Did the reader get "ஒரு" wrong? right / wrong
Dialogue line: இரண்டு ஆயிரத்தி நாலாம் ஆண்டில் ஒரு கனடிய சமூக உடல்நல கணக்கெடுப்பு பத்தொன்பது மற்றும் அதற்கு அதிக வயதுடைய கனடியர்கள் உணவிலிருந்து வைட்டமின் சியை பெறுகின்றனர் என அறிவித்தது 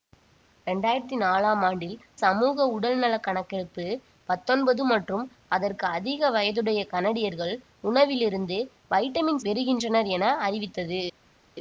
wrong